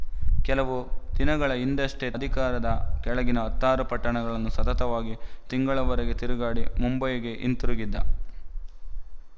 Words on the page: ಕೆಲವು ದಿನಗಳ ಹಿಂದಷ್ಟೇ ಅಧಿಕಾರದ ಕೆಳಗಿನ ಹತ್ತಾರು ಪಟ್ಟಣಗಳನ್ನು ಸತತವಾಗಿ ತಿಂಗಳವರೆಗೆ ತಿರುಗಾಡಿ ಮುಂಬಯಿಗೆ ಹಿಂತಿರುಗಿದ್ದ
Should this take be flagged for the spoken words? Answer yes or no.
no